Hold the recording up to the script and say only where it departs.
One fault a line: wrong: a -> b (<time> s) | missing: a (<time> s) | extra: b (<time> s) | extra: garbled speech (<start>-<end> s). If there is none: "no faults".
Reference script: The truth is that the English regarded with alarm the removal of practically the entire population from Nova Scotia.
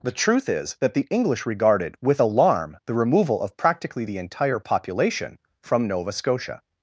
no faults